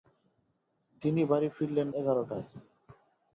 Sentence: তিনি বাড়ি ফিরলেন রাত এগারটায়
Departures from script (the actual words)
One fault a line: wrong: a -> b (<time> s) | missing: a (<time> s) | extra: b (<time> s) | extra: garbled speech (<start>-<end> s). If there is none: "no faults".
missing: রাত (1.9 s)